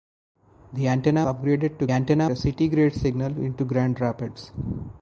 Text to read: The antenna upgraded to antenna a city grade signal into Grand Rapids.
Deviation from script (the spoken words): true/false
false